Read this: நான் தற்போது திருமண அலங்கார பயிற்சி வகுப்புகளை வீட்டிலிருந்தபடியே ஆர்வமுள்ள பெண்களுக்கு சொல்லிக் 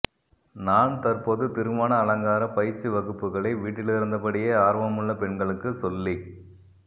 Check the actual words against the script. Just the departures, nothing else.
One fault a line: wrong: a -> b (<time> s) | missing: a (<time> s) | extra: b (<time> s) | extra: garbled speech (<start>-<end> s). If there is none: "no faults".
no faults